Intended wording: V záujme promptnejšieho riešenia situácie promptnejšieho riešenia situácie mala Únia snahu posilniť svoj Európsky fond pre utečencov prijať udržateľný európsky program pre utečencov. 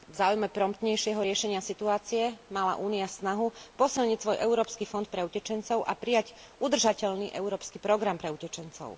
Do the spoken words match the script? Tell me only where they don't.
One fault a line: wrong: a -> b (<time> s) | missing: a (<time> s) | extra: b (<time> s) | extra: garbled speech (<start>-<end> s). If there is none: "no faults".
missing: promptnejšieho riešenia situácie (2.2 s)
extra: a (5.8 s)